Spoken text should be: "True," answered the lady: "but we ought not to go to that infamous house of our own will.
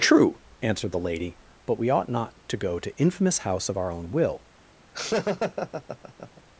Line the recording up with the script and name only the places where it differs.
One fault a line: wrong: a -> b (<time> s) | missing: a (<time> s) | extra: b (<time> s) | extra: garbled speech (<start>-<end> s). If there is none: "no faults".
missing: that (3.0 s)